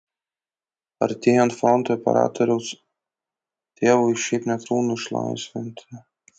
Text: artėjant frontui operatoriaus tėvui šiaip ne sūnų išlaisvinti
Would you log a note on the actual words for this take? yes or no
no